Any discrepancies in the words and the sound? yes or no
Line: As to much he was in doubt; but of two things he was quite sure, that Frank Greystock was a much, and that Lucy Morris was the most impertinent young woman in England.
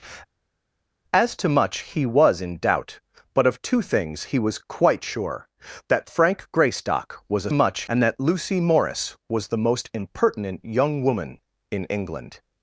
no